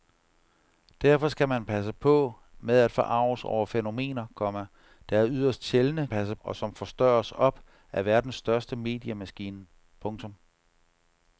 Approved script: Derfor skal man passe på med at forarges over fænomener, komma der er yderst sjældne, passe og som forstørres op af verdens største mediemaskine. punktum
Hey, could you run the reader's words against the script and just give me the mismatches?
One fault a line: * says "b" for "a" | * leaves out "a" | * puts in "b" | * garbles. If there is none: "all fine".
all fine